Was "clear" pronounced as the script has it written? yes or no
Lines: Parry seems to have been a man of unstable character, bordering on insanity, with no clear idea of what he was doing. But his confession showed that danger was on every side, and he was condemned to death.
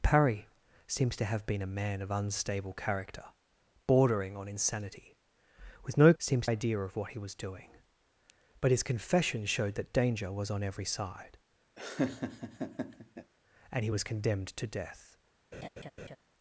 no